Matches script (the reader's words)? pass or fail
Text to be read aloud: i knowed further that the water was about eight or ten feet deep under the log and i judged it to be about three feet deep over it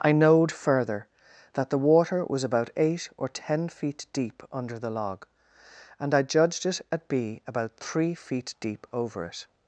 fail